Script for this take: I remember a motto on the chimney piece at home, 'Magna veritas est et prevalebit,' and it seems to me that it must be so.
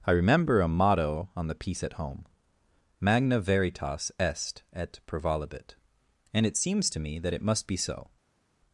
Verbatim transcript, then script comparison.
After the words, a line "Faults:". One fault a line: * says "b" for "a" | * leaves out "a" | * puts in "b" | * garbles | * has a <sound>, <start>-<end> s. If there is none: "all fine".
I remember a motto on the piece at home, 'Magna veritas est et prevalebit,' and it seems to me that it must be so.
Faults:
* leaves out "chimney"